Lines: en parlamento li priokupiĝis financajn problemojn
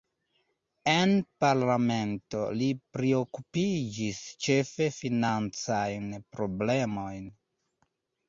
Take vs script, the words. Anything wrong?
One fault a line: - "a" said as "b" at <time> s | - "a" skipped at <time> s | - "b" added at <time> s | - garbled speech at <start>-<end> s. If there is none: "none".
- "ĉefe" added at 4.5 s